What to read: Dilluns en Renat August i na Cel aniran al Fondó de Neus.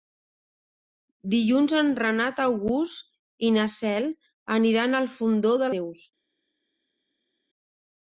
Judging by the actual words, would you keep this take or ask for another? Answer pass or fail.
pass